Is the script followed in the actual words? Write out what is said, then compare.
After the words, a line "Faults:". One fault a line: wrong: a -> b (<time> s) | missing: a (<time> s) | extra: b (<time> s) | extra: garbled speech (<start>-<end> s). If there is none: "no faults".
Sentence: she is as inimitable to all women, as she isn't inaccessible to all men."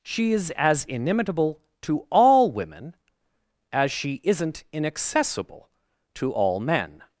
she is as inimitable to all women, as she isn't inaccessible to all men."
Faults:
no faults